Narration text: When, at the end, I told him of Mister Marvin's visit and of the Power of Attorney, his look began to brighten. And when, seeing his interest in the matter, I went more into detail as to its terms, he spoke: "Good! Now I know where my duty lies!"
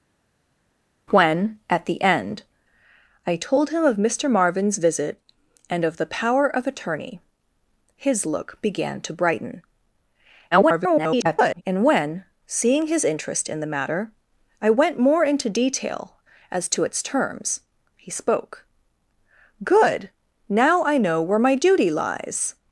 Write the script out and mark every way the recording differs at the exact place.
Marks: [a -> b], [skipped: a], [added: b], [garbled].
When, at the end, I told him of Mister Marvin's visit and of the Power of Attorney, his look began to brighten. [garbled] And when, seeing his interest in the matter, I went more into detail as to its terms, he spoke: "Good! Now I know where my duty lies!"